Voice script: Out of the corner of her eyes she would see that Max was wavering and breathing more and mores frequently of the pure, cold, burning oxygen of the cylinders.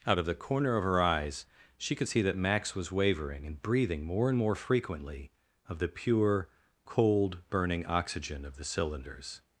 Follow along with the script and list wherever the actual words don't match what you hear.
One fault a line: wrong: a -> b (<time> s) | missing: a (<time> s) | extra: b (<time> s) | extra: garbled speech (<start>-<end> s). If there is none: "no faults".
wrong: would -> could (1.9 s)
wrong: mores -> more (4.4 s)